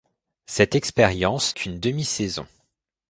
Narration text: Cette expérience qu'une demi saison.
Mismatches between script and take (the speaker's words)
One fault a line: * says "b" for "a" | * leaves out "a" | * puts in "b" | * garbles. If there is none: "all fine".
all fine